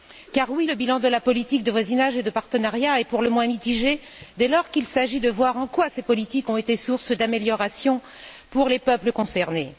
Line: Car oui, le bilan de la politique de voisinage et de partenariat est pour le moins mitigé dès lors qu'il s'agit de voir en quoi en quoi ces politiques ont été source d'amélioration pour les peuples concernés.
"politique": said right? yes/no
yes